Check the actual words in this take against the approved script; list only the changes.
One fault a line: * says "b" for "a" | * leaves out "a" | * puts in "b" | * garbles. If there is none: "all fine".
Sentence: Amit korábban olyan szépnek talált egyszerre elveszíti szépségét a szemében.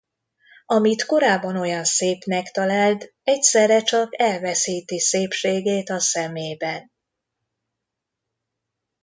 * puts in "csak"